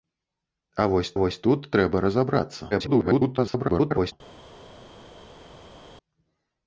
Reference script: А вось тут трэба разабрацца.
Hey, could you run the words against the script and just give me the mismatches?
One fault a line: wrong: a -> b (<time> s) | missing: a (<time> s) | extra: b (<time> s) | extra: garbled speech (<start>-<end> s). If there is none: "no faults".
extra: вось (1.2 s)
extra: garbled speech (2.7-4.1 s)